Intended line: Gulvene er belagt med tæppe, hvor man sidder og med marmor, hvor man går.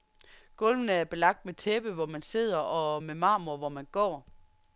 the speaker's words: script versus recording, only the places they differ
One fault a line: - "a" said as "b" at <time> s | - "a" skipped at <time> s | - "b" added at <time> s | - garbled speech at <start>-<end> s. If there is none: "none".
none